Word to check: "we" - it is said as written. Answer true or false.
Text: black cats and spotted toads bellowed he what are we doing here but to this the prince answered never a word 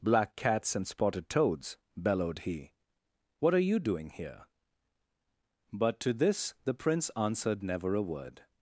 false